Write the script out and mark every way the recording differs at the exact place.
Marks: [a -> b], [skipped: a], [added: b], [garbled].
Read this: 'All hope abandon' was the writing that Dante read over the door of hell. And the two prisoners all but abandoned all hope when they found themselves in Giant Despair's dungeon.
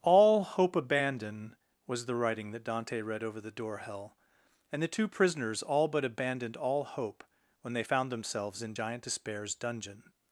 'All hope abandon' was the writing that Dante read over the door [skipped: of] hell. And the two prisoners all but abandoned all hope when they found themselves in Giant Despair's dungeon.